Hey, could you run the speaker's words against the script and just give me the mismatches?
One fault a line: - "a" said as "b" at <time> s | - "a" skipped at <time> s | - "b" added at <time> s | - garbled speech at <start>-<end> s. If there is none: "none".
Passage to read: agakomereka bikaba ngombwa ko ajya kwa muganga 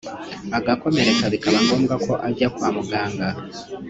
none